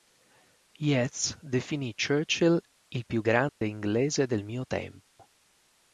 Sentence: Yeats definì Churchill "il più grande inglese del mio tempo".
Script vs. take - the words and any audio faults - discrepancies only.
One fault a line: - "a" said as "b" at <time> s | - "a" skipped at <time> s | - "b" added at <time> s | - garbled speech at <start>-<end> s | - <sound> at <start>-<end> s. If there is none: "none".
- dropout at 3.5-3.6 s
- dropout at 5.1-5.2 s